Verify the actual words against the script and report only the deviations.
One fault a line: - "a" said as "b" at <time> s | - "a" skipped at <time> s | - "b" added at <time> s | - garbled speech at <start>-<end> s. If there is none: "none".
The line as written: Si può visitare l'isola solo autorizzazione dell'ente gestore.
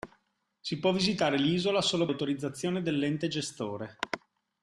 none